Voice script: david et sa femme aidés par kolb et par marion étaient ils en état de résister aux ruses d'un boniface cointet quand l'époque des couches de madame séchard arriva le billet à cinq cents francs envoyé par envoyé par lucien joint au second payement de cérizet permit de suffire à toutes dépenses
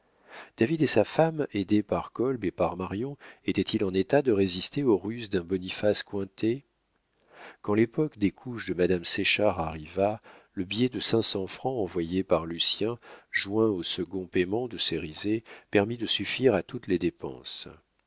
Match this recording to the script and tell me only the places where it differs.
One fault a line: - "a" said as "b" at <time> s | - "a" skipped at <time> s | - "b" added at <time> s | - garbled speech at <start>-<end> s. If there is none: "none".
- "à" said as "de" at 10.9 s
- "envoyé par" skipped at 12.5 s
- "les" added at 16.9 s